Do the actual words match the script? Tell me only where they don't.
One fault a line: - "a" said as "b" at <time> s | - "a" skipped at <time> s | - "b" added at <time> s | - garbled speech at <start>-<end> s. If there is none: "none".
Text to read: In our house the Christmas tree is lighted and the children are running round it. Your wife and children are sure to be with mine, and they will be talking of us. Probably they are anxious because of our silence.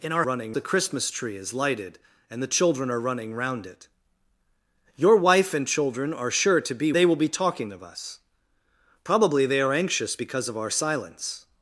- "house" said as "running" at 0.2 s
- "with mine and" skipped at 6.9 s